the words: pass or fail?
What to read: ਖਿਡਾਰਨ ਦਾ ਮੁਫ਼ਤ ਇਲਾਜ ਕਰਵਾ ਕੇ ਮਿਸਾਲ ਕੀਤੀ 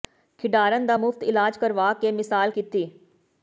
pass